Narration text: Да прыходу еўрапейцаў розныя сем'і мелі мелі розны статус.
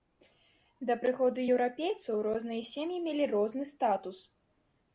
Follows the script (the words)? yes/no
no